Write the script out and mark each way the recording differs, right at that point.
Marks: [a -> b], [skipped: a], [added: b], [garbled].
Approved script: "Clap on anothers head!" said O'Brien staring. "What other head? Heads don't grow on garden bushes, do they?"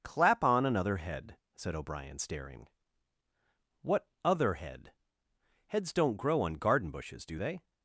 "Clap on [anothers -> another] head!" said O'Brien staring. "What other head? Heads don't grow on garden bushes, do they?"